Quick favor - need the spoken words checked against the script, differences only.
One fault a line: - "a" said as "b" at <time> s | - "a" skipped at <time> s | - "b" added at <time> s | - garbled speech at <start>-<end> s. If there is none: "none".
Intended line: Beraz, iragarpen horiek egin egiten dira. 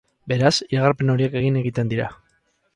none